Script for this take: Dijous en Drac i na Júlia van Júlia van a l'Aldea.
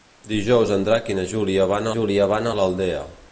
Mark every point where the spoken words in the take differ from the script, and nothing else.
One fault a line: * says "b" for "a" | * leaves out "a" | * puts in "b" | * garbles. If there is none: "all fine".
all fine